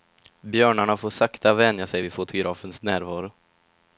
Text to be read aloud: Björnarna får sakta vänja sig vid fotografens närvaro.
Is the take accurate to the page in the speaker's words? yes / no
yes